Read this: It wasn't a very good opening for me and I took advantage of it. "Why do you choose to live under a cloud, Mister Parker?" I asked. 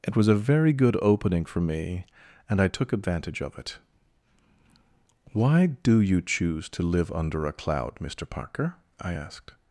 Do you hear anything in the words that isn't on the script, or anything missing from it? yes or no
yes